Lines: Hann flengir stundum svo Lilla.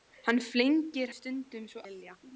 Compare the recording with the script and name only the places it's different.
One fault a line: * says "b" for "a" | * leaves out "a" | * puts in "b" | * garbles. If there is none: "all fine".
all fine